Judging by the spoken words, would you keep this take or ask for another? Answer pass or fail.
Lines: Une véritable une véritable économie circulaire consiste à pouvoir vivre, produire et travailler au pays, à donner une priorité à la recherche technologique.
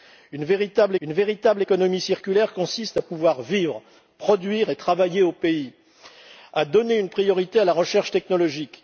pass